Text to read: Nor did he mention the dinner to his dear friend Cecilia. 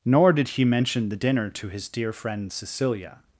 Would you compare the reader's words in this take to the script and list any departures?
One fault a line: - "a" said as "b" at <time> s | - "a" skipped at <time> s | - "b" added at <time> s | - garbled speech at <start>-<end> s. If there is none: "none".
none